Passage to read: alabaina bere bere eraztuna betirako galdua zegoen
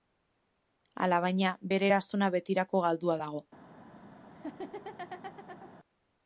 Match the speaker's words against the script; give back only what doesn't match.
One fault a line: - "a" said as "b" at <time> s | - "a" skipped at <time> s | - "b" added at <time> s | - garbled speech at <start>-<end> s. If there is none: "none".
- "bere" skipped at 1.9 s
- "zegoen" said as "dago" at 3.2 s